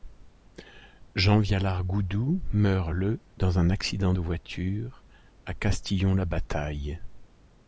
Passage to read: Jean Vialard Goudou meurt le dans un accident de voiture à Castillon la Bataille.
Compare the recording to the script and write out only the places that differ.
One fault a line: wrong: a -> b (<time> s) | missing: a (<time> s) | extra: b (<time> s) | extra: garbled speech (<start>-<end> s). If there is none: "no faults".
no faults